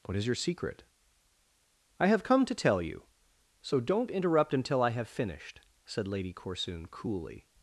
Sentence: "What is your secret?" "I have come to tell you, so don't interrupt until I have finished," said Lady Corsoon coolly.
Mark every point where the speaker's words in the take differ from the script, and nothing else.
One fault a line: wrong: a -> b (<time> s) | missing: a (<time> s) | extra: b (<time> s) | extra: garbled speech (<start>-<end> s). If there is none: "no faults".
no faults